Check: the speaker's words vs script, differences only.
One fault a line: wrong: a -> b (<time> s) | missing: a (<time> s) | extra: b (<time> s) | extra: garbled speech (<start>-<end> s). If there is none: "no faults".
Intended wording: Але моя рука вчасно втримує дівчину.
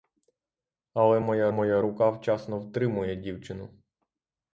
extra: моя (1.5 s)